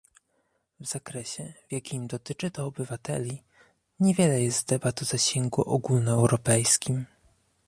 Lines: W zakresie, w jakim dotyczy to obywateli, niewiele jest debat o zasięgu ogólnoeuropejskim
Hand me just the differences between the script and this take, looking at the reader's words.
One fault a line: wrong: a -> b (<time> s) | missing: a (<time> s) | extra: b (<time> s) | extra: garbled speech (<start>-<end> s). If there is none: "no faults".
no faults